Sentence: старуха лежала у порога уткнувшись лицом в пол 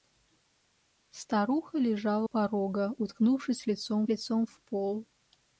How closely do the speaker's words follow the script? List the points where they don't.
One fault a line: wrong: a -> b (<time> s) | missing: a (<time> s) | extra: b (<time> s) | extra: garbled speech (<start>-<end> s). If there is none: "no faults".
missing: у (2.3 s)
extra: лицом (4.1 s)